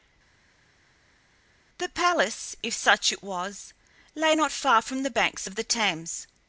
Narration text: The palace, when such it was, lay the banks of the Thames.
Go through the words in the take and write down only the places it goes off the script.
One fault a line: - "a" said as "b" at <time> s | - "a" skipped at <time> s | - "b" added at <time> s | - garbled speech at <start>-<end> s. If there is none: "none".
- "when" said as "if" at 2.6 s
- "not far from" added at 4.3 s